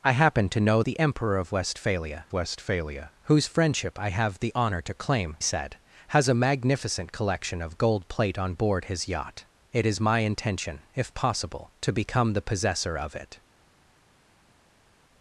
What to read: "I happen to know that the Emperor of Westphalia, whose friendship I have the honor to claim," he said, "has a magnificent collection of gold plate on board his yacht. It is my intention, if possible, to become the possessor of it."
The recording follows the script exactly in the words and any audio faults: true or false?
false